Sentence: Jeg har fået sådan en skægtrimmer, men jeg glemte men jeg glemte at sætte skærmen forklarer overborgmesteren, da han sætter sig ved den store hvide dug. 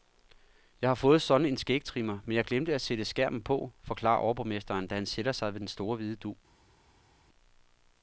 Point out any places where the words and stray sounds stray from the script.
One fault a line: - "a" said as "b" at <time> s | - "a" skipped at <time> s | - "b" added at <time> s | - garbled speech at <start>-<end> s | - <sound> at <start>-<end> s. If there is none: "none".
- "men jeg glemte" skipped at 2.7 s
- "på" added at 3.4 s